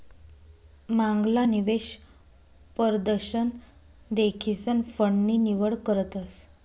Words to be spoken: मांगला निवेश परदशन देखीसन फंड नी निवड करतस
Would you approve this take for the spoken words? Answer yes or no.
yes